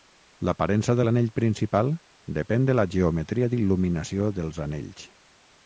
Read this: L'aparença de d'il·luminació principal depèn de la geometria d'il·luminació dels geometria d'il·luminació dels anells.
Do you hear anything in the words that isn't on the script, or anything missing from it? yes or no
yes